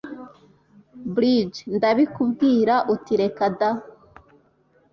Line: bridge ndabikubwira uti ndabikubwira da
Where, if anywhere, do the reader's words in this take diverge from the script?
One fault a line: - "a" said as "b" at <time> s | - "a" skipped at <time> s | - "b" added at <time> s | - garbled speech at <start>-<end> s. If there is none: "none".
- "ndabikubwira" said as "reka" at 3.2 s